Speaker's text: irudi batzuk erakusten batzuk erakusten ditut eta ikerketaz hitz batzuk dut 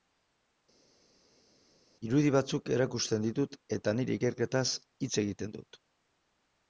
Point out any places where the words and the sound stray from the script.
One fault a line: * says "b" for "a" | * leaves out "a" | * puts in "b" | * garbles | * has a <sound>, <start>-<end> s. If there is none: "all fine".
* leaves out "batzuk erakusten"
* puts in "nire"
* says "egiten" for "batzuk"